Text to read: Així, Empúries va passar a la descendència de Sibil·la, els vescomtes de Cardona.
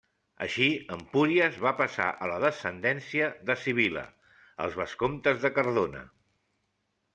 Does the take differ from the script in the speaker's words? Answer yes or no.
no